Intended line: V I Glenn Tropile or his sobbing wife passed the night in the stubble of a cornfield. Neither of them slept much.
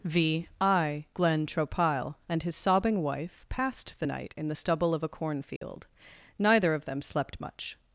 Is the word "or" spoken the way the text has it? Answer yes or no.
no